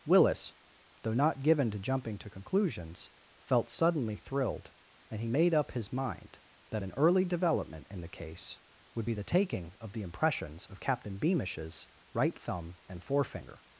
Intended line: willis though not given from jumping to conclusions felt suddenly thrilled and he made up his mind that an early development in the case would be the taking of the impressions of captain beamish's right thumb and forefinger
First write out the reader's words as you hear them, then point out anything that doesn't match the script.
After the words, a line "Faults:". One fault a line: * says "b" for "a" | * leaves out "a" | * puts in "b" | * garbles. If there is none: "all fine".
willis though not given to jumping to conclusions felt suddenly thrilled and he made up his mind that an early development in the case would be the taking of the impressions of captain beamish's right thumb and forefinger
Faults:
* says "to" for "from"